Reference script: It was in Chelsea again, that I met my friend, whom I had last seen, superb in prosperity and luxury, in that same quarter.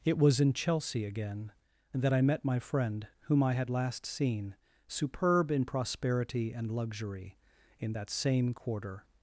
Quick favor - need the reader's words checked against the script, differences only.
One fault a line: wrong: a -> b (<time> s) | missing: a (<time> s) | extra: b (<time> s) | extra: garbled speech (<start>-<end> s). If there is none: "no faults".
no faults